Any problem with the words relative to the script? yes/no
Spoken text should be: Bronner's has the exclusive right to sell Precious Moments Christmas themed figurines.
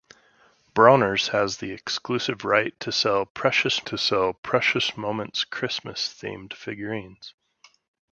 yes